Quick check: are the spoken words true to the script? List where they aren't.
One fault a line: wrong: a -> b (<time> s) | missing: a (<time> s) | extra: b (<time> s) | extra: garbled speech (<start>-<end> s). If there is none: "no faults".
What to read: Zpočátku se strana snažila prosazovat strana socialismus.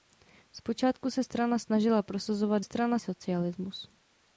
no faults